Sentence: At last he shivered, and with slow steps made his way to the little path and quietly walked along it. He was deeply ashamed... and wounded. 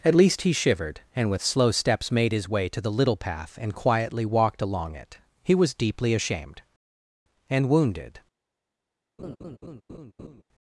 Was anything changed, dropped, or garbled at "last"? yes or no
yes